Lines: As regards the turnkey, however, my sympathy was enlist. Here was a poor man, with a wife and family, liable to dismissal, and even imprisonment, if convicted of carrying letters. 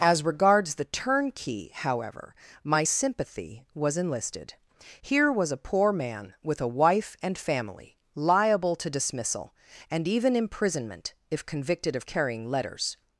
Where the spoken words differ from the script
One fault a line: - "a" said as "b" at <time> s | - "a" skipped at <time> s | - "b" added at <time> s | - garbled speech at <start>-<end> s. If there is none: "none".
- "enlist" said as "enlisted" at 4.0 s